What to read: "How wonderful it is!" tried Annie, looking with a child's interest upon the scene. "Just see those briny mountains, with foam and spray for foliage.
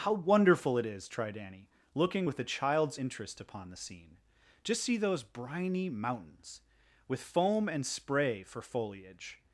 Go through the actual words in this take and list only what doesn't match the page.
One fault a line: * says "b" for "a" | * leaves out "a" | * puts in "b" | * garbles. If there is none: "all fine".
all fine